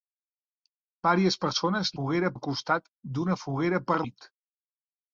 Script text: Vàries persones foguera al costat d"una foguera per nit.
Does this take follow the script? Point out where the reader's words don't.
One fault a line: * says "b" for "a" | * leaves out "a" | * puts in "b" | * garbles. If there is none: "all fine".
all fine